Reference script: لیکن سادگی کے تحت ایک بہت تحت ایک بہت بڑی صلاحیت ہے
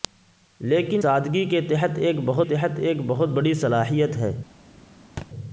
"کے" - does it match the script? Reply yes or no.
yes